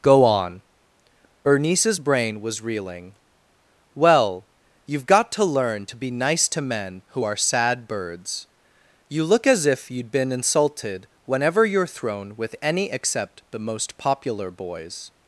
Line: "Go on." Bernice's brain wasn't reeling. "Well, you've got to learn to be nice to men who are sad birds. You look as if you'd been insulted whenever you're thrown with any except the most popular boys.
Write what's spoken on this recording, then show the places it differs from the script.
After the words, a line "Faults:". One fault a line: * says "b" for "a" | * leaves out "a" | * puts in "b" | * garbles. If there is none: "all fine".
"Go on." Bernice's brain was reeling. "Well, you've got to learn to be nice to men who are sad birds. You look as if you'd been insulted whenever you're thrown with any except the most popular boys.
Faults:
* says "was" for "wasn't"